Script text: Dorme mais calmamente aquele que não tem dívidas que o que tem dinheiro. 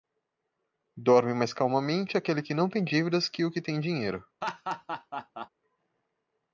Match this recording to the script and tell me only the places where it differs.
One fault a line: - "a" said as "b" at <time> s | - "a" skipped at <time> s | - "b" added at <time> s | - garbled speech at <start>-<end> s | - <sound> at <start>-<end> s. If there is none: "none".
- laugh at 4.4-5.5 s